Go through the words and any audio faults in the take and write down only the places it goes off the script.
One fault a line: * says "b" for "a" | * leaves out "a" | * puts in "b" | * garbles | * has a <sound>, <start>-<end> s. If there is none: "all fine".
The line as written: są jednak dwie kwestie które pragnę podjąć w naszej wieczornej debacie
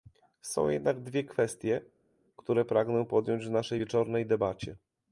all fine